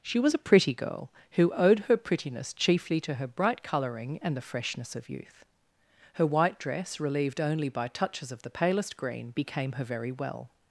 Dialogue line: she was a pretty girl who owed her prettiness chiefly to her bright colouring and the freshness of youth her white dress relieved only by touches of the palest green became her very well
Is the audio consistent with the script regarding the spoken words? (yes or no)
yes